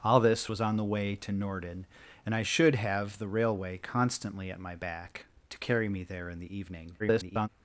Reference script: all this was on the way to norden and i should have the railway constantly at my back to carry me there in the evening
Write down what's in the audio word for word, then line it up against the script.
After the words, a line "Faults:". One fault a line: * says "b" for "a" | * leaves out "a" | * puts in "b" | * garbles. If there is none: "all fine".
all this was on the way to norden and i should have the railway constantly at my back to carry me there in the evening [garbled]
Faults:
* garbles